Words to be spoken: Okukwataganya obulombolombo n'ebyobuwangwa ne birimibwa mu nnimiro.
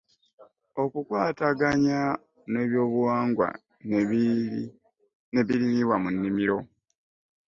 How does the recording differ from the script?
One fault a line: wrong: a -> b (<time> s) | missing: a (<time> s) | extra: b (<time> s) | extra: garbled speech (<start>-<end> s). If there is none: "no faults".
missing: obulombolombo (2.0 s)